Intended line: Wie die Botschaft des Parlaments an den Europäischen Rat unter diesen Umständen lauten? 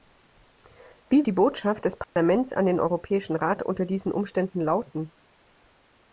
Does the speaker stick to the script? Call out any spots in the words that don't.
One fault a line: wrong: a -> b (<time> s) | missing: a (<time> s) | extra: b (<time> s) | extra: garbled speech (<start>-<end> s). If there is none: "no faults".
no faults